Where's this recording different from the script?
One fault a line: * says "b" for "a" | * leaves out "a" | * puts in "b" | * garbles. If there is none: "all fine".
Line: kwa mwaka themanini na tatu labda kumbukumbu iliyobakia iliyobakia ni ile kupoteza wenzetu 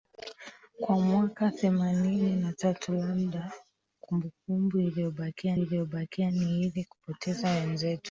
all fine